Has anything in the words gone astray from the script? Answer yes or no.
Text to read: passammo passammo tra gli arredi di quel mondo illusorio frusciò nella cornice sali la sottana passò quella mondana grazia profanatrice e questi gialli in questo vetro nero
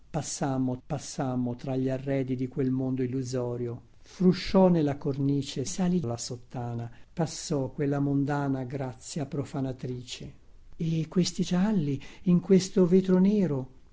no